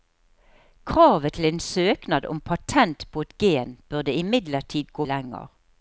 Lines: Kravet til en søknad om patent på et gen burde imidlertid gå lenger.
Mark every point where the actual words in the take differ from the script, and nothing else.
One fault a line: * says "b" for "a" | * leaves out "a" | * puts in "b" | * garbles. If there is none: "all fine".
all fine